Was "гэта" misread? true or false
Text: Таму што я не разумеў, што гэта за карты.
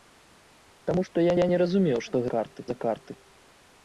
true